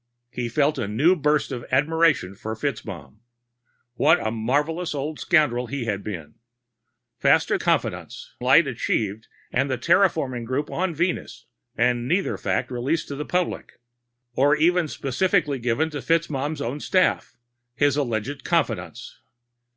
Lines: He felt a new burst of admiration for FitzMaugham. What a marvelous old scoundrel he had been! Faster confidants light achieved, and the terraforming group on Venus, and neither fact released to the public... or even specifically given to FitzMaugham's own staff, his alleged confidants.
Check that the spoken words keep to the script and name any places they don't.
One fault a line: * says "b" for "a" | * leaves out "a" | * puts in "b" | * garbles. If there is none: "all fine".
all fine